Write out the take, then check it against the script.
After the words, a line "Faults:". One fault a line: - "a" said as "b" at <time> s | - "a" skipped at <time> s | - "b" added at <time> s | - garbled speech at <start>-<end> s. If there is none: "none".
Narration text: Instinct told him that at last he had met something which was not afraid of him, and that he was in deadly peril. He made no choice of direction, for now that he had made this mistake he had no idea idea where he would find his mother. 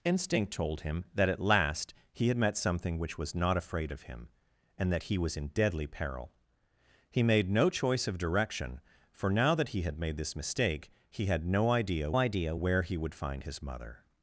Instinct told him that at last he had met something which was not afraid of him, and that he was in deadly peril. He made no choice of direction, for now that he had made this mistake he had no idea idea where he would find his mother.
Faults:
none